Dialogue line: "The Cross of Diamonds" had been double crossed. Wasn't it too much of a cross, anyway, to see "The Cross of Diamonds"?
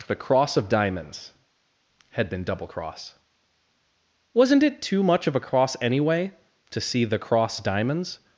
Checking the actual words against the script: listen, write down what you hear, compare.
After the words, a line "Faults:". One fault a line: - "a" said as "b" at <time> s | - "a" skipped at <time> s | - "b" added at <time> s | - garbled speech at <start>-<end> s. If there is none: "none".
"The Cross of Diamonds" had been double cross. Wasn't it too much of a cross, anyway, to see "The Cross Diamonds"?
Faults:
- "crossed" said as "cross" at 2.6 s
- "of" skipped at 7.6 s